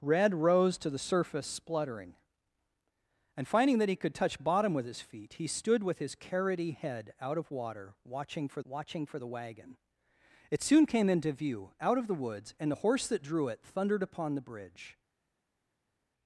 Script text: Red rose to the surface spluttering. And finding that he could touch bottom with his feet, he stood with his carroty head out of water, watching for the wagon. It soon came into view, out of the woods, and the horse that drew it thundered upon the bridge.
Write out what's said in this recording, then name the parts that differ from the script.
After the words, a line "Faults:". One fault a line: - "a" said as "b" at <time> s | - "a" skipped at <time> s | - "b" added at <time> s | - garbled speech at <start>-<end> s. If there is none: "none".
Red rose to the surface spluttering. And finding that he could touch bottom with his feet, he stood with his carroty head out of water, watching for watching for the wagon. It soon came into view, out of the woods, and the horse that drew it thundered upon the bridge.
Faults:
- "watching for" added at 8.6 s